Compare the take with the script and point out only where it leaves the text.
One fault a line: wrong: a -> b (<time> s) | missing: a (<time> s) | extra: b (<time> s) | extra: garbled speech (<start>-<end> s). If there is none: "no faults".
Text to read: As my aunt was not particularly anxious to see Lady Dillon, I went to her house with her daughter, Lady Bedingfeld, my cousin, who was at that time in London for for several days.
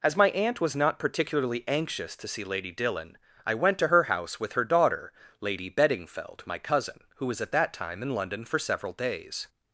missing: for (8.6 s)